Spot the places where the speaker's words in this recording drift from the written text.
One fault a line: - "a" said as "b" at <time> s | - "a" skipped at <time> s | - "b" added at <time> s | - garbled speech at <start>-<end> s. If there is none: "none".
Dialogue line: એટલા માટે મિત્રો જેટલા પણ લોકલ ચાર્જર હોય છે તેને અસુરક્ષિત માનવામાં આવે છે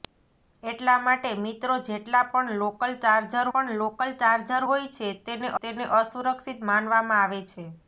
- "પણ લોકલ ચાર્જર" added at 3.5 s
- "તેને" added at 5.6 s